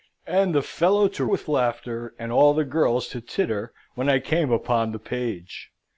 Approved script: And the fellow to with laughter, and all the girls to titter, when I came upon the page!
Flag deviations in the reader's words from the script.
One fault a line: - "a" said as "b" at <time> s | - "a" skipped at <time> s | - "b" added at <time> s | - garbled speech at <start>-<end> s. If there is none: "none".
none